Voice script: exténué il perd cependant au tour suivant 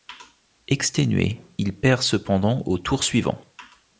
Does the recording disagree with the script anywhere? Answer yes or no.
no